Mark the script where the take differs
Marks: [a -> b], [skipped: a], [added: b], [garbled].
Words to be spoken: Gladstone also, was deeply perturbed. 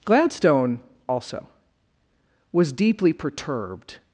Gladstone also, was deeply perturbed.